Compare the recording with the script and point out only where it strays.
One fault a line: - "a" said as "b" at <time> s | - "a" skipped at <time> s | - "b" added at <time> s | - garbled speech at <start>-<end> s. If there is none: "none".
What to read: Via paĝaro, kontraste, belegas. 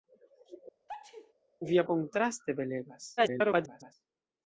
- "paĝaro" skipped at 1.8 s
- garbled speech at 3.2-3.9 s